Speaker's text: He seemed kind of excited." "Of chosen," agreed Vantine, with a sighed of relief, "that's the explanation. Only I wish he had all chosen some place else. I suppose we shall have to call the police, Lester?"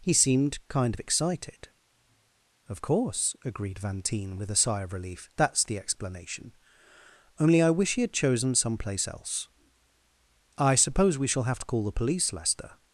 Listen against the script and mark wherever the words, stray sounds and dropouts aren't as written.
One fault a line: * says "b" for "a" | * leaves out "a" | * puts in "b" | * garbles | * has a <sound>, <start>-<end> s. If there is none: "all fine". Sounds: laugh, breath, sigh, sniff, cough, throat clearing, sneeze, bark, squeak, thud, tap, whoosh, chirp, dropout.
* says "course" for "chosen"
* says "sigh" for "sighed"
* leaves out "all"